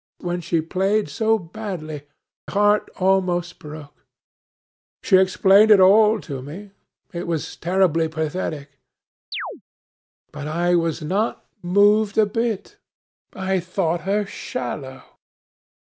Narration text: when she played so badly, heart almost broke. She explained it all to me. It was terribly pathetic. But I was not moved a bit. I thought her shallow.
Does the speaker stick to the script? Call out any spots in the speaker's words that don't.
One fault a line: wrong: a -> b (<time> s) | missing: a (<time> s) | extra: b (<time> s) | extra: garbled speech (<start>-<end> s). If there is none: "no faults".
no faults